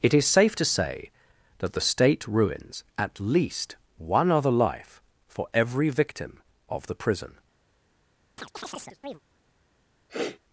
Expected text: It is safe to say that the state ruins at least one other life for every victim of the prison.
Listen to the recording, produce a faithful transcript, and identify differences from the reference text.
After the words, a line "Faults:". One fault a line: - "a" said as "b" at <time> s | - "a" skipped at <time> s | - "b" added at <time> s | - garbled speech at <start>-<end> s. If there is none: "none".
It is safe to say that the state ruins at least one other life for every victim of the prison.
Faults:
none